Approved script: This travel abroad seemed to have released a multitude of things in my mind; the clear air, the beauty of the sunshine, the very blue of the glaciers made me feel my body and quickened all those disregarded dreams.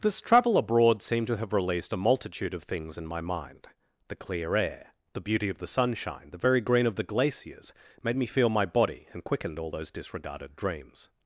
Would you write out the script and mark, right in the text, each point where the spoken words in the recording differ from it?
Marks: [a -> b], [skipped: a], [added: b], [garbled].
This travel abroad seemed to have released a multitude of things in my mind; the clear air, the beauty of the sunshine, the very [blue -> green] of the glaciers made me feel my body and quickened all those disregarded dreams.